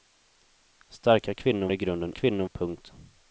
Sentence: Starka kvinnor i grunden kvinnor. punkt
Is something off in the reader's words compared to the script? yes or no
no